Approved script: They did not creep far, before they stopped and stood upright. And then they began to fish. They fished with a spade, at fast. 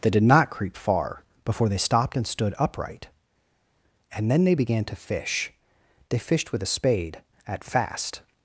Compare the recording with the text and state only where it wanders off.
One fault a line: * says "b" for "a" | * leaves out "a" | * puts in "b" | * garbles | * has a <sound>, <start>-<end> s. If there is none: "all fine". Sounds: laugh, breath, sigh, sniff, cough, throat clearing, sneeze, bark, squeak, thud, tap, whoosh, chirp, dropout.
all fine